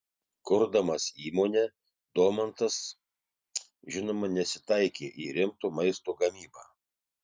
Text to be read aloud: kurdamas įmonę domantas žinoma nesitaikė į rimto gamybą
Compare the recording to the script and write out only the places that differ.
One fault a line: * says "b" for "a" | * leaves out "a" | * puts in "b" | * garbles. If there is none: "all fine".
* puts in "maisto"